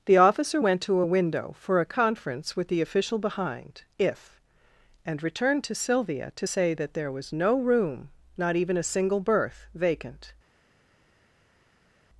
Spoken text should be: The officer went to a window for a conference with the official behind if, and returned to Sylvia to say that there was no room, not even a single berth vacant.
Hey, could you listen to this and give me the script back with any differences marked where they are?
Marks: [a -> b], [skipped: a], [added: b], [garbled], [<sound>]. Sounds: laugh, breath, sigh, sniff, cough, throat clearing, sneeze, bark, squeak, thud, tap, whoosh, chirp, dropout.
The officer went to a window for a conference with the official behind if, and returned to Sylvia to say that there was no room, not even a single berth vacant.